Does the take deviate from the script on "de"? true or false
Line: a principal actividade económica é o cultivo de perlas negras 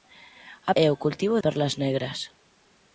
true